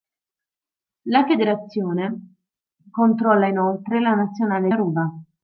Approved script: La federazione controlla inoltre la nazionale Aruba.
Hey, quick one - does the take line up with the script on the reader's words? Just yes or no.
yes